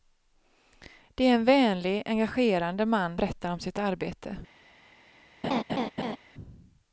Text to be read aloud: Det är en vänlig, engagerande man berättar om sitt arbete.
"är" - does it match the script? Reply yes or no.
yes